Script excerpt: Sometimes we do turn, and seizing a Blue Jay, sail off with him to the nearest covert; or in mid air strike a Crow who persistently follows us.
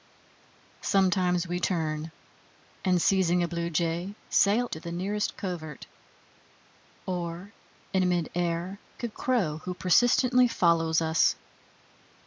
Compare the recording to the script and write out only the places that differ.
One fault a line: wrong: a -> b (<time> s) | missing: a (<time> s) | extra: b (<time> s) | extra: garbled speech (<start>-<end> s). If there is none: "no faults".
missing: do (1.6 s)
missing: off with him (4.7 s)
missing: strike (8.8 s)